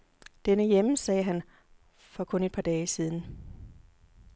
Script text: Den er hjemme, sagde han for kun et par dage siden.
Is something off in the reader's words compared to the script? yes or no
no